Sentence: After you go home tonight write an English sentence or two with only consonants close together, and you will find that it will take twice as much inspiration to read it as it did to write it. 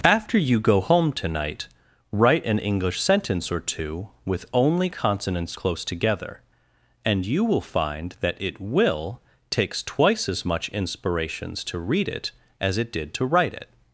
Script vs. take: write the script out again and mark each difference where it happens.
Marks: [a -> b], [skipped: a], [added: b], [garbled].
After you go home tonight write an English sentence or two with only consonants close together, and you will find that it will [take -> takes] twice as much [inspiration -> inspirations] to read it as it did to write it.